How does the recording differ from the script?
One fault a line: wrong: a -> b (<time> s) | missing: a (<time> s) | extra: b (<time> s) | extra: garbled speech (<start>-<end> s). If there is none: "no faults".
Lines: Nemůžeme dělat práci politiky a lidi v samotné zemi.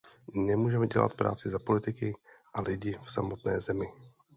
extra: za (1.5 s)